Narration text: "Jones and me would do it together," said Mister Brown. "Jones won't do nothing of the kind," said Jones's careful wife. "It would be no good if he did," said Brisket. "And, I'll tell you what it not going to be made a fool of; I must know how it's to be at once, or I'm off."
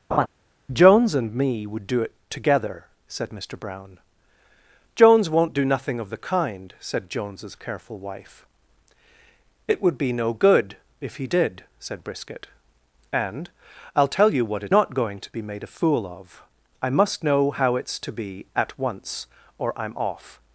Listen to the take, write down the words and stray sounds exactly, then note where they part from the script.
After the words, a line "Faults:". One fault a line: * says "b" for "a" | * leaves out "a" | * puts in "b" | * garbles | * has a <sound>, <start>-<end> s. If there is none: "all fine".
"Jones and me would do it together," said Mister Brown. "Jones won't do nothing of the kind," said Jones's careful wife. "It would be no good if he did," said Brisket. "And, I'll tell you what it not going to be made a fool of; I must know how it's to be at once, or I'm off."
Faults:
* has a laugh, 0.1-0.3 s